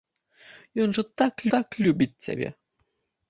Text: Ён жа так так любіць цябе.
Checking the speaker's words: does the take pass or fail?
pass